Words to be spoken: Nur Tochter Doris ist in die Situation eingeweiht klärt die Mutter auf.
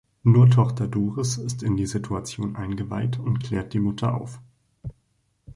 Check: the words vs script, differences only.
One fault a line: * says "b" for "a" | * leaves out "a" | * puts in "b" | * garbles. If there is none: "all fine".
* puts in "und"